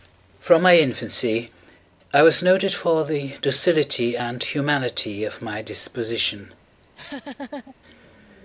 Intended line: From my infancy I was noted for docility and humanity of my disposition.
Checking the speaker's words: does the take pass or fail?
fail